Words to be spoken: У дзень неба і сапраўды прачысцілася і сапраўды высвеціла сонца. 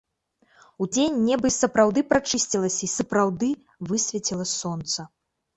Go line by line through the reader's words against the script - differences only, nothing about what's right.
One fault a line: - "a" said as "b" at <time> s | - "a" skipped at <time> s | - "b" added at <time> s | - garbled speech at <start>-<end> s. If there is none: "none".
none